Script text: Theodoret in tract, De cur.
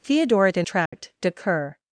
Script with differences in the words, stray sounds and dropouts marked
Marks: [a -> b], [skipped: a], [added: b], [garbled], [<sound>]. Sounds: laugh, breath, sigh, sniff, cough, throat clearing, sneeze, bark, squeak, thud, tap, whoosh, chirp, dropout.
Theodoret in tract, [dropout] De cur.